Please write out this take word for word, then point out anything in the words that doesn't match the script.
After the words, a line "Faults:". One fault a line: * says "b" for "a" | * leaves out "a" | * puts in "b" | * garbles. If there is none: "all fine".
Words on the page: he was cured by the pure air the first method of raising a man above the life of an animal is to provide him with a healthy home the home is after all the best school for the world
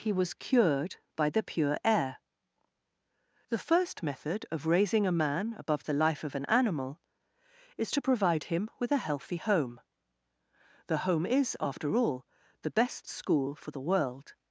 he was cured by the pure air the first method of raising a man above the life of an animal is to provide him with a healthy home the home is after all the best school for the world
Faults:
all fine